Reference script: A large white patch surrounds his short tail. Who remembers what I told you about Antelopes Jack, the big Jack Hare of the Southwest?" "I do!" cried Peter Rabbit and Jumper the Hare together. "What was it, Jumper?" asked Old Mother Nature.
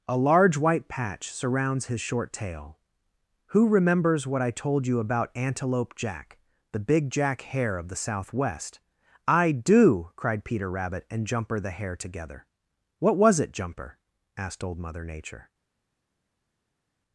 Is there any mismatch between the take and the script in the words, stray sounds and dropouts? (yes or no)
yes